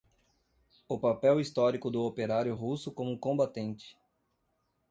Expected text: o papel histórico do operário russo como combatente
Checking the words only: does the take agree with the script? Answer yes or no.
yes